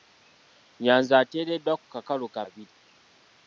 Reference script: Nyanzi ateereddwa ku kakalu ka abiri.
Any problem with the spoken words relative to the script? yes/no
no